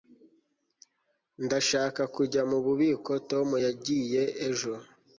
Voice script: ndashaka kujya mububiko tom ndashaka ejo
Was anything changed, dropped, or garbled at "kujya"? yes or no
no